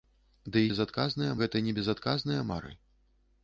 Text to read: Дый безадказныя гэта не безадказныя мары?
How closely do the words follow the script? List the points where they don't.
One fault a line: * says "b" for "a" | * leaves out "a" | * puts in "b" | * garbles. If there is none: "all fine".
all fine